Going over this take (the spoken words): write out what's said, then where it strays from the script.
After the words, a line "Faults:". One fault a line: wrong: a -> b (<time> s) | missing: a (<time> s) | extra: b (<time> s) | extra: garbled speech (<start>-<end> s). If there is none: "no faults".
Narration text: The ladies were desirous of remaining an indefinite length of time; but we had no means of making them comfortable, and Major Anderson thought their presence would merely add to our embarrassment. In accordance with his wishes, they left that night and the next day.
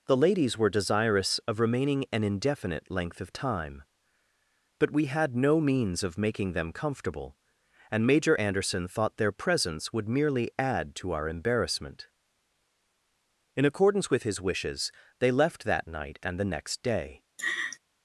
The ladies were desirous of remaining an indefinite length of time; but we had no means of making them comfortable, and Major Anderson thought their presence would merely add to our embarrassment. In accordance with his wishes, they left that night and the next day.
Faults:
no faults